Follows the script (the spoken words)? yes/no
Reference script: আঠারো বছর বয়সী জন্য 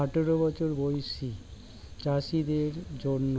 no